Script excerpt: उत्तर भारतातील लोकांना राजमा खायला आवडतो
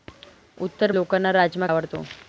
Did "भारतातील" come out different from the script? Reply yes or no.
yes